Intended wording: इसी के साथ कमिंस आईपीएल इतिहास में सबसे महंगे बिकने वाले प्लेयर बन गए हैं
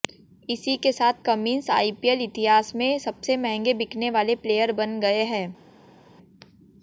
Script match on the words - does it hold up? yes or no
yes